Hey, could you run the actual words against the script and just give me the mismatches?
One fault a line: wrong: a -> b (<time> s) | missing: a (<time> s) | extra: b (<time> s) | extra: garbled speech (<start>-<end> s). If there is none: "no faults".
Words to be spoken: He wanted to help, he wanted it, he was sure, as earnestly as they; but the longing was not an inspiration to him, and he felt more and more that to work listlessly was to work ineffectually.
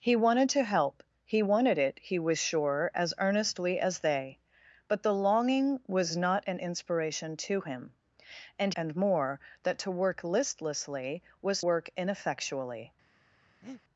missing: he felt more (8.7 s)
missing: to (11.6 s)